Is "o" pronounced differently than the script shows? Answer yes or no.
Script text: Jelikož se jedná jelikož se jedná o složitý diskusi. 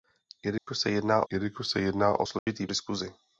no